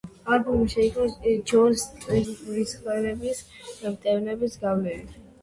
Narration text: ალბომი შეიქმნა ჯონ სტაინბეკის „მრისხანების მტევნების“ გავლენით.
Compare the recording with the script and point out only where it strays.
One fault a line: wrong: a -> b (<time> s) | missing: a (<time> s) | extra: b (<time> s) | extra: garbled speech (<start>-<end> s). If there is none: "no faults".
missing: სტაინბეკის (1.8 s)